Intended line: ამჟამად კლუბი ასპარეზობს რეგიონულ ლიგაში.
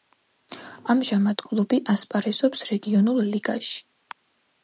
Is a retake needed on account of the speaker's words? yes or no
no